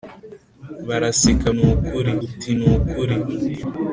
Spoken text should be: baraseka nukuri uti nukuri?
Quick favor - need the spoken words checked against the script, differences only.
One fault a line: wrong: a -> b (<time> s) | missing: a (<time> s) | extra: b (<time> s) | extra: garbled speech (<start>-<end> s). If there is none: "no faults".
no faults